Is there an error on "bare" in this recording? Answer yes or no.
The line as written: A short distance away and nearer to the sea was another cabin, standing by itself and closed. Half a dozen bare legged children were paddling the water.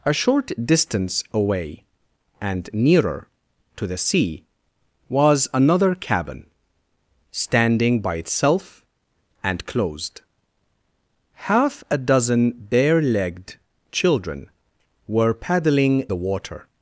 no